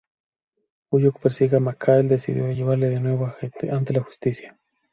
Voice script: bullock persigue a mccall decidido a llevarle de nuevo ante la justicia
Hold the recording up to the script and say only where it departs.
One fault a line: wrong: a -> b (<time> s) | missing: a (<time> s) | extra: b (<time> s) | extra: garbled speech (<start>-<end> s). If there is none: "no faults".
no faults